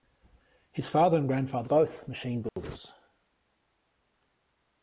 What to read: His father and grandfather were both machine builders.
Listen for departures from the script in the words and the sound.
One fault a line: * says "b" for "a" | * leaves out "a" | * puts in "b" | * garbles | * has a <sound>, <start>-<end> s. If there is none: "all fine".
* leaves out "were"
* has a dropout, 2.5-2.6 s